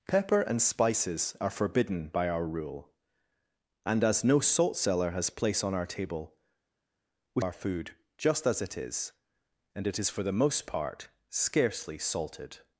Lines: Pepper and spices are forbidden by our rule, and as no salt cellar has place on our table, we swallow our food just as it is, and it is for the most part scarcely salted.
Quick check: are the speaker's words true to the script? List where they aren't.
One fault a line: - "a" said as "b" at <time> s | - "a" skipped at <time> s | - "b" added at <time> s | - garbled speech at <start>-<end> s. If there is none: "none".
- "swallow" skipped at 7.4 s